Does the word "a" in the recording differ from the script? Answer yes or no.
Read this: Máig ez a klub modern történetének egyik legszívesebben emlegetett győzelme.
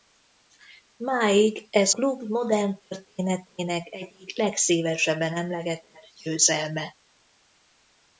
yes